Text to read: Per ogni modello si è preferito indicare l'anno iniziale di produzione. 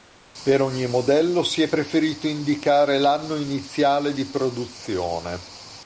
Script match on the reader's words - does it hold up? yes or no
yes